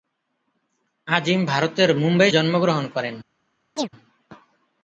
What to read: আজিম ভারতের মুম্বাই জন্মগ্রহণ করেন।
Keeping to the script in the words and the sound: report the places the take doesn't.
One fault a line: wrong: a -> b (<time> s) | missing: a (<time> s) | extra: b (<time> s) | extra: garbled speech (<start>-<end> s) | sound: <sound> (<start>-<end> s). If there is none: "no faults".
sound: chirp (3.8-3.9 s)